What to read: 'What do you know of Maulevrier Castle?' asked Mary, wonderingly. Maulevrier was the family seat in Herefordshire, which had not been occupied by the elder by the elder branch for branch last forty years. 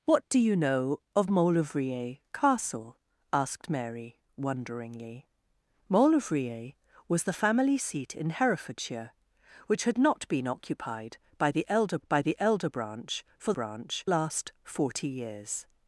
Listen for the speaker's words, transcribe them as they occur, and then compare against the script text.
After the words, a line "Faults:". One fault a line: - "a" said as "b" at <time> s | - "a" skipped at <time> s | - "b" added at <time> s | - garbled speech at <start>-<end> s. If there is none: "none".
'What do you know of Maulevrier Castle?' asked Mary, wonderingly. Maulevrier was the family seat in Herefordshire, which had not been occupied by the elder by the elder branch for branch last forty years.
Faults:
none